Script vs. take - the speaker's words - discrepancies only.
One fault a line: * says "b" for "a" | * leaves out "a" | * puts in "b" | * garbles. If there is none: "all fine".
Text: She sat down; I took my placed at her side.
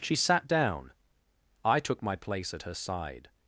* says "place" for "placed"